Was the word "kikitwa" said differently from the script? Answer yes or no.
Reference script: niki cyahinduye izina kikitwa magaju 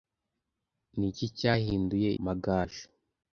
yes